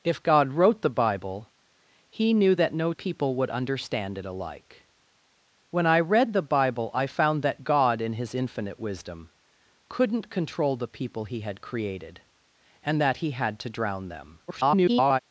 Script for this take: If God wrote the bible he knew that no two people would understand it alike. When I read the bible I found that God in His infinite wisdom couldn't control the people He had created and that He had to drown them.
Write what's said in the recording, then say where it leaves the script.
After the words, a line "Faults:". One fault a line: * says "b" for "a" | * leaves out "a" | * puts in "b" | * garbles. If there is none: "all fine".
If God wrote the bible he knew that no people would understand it alike. When I read the bible I found that God in His infinite wisdom couldn't control the people He had created and that He had to drown them. [garbled]
Faults:
* leaves out "two"
* garbles